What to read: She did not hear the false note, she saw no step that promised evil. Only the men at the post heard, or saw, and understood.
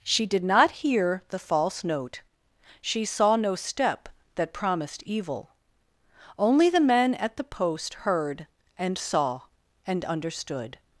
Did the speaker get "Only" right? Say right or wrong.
right